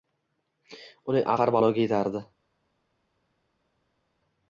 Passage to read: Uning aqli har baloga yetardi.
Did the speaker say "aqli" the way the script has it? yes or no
no